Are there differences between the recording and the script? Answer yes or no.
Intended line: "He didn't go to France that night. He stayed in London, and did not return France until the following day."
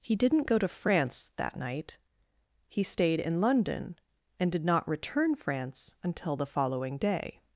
no